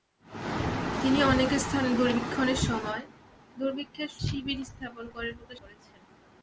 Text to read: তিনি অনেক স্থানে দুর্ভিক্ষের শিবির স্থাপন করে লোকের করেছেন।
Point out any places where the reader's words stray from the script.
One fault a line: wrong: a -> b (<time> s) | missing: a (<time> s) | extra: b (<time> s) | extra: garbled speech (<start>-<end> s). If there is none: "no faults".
no faults